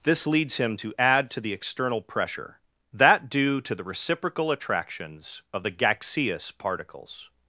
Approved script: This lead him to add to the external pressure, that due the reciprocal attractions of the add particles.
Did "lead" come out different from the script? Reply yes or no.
yes